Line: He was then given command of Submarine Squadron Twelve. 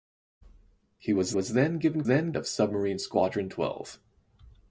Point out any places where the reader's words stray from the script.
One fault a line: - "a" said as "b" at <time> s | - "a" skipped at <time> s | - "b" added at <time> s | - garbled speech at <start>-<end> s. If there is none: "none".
- "was" added at 1.3 s
- "command" said as "then" at 2.1 s